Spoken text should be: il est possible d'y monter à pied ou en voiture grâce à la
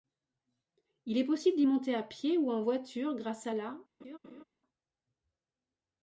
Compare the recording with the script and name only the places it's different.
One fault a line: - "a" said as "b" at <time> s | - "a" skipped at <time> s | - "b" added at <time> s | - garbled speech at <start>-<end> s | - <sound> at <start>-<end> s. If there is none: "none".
- laugh at 4.0-4.4 s